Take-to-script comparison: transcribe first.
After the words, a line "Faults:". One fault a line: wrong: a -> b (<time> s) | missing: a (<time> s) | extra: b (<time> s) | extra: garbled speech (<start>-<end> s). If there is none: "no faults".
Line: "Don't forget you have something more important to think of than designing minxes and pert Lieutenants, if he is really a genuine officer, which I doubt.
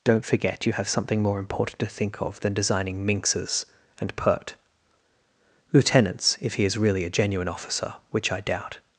"Don't forget you have something more important to think of than designing minxes and pert Lieutenants, if he is really a genuine officer, which I doubt.
Faults:
no faults